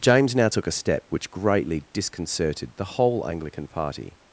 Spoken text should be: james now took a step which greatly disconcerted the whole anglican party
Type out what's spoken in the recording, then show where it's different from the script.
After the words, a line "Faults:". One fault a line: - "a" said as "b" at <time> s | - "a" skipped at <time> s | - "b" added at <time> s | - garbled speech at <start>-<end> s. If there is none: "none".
james now took a step which greatly disconcerted the whole anglican party
Faults:
none